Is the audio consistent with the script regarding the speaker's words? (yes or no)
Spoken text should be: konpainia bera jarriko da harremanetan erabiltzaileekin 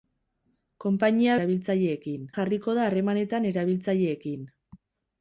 no